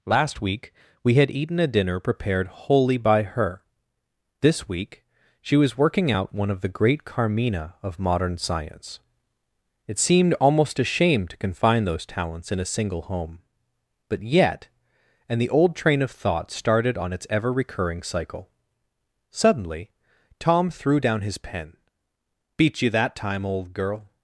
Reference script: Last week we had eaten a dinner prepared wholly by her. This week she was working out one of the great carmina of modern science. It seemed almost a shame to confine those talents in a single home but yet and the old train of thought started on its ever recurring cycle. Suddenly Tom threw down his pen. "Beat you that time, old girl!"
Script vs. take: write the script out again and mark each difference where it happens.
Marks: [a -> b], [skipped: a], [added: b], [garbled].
Last week we had eaten a dinner prepared wholly by her. This week she was working out one of the great carmina of modern science. It seemed almost a shame to confine those talents in a single home but yet and the old train of thought started on its ever recurring cycle. Suddenly Tom threw down his pen. "Beat you that time, old girl!"